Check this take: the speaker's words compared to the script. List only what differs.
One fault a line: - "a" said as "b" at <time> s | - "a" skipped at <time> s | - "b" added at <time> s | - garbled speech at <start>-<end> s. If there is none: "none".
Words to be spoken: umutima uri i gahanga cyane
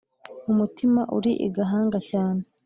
none